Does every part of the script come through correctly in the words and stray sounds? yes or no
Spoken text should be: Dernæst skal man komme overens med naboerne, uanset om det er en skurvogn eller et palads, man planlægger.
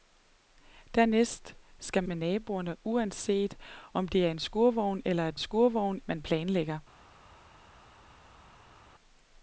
no